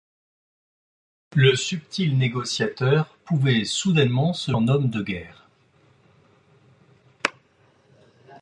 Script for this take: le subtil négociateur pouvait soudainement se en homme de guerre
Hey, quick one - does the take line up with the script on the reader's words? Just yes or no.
yes